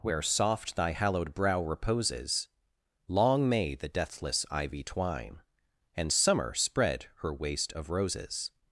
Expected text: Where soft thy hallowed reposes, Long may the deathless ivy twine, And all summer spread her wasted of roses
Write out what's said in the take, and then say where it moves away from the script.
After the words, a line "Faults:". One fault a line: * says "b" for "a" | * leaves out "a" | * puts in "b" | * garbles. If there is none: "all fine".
Where soft thy hallowed brow reposes, Long may the deathless ivy twine, And summer spread her waste of roses
Faults:
* puts in "brow"
* leaves out "all"
* says "waste" for "wasted"